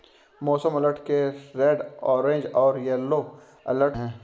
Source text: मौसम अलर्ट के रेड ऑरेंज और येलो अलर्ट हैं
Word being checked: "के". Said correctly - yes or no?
yes